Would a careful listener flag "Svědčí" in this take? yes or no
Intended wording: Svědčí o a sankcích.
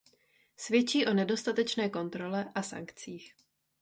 no